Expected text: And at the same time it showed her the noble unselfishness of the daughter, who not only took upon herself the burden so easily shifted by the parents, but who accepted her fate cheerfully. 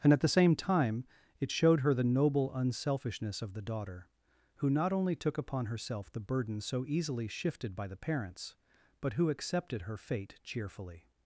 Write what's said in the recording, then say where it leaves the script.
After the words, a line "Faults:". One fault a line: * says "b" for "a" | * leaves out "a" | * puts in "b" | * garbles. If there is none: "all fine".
And at the same time it showed her the noble unselfishness of the daughter, who not only took upon herself the burden so easily shifted by the parents, but who accepted her fate cheerfully.
Faults:
all fine